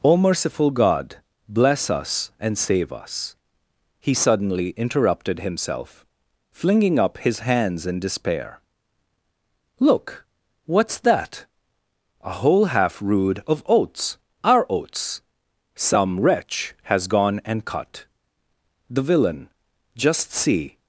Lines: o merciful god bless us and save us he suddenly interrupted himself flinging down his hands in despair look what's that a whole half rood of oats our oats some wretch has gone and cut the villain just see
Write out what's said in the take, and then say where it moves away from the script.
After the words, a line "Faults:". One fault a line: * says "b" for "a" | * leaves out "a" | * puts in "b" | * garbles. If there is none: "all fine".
o merciful god bless us and save us he suddenly interrupted himself flinging up his hands in despair look what's that a whole half rood of oats our oats some wretch has gone and cut the villain just see
Faults:
* says "up" for "down"